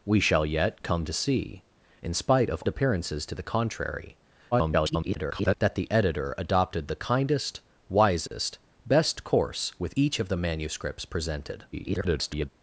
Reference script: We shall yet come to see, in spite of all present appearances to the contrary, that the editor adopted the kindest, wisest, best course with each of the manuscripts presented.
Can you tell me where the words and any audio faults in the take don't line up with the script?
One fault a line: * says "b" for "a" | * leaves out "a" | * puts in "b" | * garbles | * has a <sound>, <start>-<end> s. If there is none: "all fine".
* leaves out "all present"
* garbles
* has a dropout, 8.3-8.3 s
* garbles